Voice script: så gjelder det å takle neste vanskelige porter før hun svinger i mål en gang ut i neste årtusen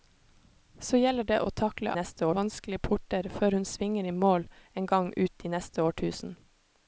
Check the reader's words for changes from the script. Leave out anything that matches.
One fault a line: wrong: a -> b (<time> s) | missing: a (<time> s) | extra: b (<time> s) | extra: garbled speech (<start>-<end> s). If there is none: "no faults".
no faults